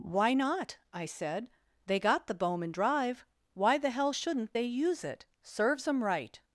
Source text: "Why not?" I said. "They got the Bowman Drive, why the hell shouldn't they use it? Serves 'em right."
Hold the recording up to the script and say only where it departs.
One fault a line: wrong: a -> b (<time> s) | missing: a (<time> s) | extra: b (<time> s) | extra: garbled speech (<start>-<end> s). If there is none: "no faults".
no faults